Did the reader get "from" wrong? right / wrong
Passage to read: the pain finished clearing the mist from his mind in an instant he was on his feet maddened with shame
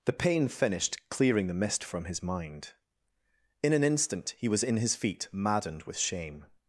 right